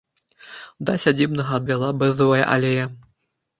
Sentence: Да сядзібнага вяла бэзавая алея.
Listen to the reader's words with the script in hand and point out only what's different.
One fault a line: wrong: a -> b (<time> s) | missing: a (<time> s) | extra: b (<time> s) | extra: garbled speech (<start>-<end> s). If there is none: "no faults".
no faults